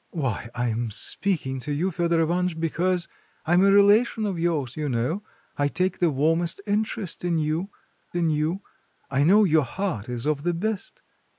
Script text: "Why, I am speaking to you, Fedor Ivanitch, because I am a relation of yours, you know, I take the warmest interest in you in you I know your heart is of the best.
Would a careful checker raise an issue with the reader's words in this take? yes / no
no